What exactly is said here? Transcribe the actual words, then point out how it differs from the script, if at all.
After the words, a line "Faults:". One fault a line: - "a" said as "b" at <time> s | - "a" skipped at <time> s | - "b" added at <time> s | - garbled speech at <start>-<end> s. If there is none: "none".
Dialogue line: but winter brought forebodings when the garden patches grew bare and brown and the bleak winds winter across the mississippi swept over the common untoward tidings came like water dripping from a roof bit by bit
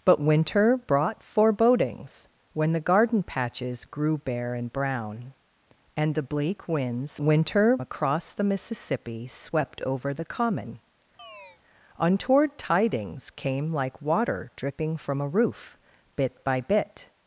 but winter brought forebodings when the garden patches grew bare and brown and the bleak winds winter across the mississippi swept over the common untoward tidings came like water dripping from a roof bit by bit
Faults:
none